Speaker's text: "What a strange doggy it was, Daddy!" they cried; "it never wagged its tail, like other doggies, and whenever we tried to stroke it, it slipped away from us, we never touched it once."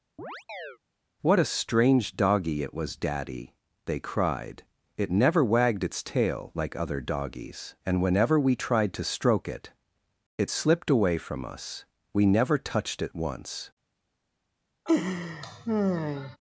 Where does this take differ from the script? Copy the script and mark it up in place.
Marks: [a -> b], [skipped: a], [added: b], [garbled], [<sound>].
[chirp] "What a strange doggy it was, Daddy!" they cried; "it never wagged its tail, like other doggies, and whenever we tried to stroke it, it slipped away from us, we never touched it once." [laugh]